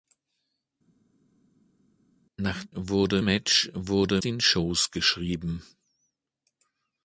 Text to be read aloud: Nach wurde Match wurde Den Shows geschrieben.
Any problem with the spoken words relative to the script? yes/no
no